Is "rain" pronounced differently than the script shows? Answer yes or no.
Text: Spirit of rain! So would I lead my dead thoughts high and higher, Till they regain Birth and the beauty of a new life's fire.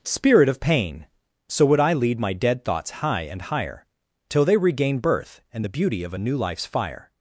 yes